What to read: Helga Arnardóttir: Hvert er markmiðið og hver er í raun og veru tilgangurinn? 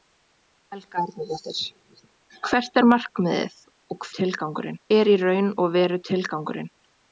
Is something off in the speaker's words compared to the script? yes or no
yes